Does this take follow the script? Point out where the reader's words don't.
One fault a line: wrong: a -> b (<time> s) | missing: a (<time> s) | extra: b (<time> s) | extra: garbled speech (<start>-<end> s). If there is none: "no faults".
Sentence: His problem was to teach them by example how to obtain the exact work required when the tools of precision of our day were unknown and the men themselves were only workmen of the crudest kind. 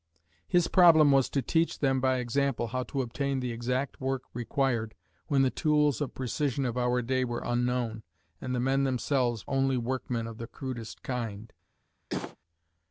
missing: were (9.4 s)